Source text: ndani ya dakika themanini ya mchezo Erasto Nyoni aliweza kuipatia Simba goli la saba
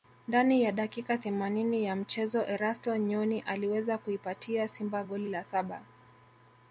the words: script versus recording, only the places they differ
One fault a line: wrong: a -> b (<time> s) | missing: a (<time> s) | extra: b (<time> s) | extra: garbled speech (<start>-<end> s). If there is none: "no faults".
no faults